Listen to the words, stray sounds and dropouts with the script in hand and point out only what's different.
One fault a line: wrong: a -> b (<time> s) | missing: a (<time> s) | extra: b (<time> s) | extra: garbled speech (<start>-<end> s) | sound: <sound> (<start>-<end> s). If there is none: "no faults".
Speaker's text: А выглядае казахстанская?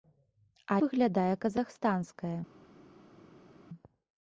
no faults